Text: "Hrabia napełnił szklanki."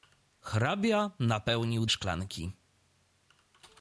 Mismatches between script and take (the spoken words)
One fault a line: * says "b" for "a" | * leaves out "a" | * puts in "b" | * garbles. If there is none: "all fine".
all fine